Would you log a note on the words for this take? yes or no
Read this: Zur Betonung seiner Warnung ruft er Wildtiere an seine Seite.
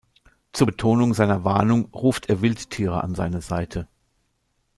no